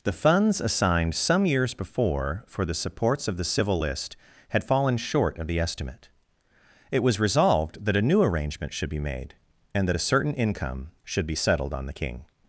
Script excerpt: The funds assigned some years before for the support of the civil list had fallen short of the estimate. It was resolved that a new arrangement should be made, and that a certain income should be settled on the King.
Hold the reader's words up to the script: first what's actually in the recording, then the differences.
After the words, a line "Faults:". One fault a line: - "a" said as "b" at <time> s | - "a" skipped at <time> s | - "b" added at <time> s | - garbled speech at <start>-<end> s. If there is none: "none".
The funds assigned some years before for the supports of the civil list had fallen short of the estimate. It was resolved that a new arrangement should be made, and that a certain income should be settled on the King.
Faults:
- "support" said as "supports" at 2.7 s